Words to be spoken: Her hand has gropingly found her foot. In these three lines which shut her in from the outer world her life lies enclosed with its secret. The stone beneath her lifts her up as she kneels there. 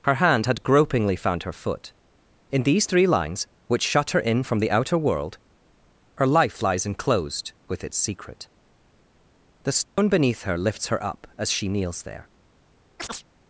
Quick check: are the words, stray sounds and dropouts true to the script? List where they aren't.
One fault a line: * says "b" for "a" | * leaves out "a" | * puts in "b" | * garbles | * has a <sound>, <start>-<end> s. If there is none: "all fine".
* says "had" for "has"
* has a dropout, 9.8-10.0 s
* has a chirp, 13.0-13.2 s